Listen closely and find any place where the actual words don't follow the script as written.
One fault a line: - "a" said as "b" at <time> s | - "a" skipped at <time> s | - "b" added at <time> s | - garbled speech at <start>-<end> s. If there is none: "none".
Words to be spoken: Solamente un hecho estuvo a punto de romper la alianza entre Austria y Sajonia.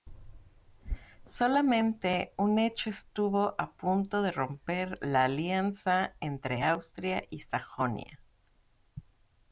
none